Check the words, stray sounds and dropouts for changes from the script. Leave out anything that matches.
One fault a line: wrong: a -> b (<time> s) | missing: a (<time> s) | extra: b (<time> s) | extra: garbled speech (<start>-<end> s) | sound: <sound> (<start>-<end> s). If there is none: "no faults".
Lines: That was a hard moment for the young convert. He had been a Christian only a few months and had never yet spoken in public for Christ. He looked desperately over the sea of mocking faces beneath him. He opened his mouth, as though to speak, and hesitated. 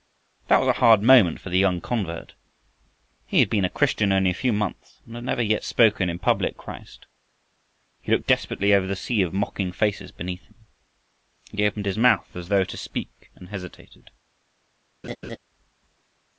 missing: for (6.6 s)
sound: laugh (15.0-15.4 s)